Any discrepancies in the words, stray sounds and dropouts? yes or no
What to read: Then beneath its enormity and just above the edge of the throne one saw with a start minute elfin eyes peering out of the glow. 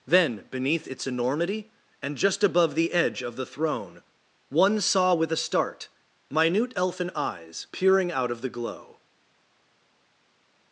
no